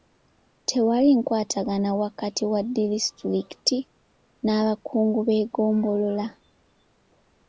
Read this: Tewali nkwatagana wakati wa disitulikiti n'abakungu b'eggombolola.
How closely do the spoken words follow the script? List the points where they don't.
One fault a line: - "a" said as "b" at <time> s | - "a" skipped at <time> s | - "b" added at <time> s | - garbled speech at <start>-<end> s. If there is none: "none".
none